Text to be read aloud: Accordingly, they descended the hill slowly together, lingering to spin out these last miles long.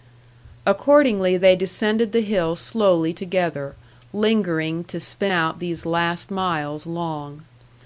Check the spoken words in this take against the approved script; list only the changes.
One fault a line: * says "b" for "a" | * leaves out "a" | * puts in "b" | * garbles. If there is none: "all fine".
all fine